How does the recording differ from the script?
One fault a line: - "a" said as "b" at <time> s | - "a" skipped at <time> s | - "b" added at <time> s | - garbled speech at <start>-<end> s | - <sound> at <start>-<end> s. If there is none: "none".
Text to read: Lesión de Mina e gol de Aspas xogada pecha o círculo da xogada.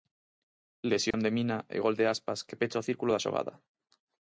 - dropout at 1.1-1.1 s
- "xogada" said as "que" at 2.5 s